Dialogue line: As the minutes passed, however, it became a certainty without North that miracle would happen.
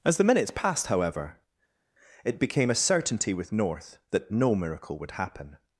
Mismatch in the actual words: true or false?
true